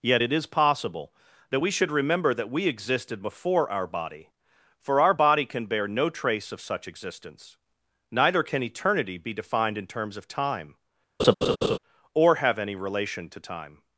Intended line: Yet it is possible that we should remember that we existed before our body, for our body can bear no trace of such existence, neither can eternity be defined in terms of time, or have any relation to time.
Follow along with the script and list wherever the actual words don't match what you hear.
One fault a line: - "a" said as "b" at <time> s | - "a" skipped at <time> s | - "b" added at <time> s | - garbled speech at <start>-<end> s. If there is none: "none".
none